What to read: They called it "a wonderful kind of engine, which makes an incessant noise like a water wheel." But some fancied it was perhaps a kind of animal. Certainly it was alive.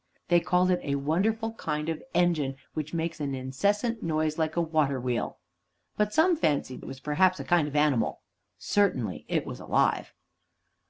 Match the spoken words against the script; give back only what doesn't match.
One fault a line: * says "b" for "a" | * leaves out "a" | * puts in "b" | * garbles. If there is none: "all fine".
all fine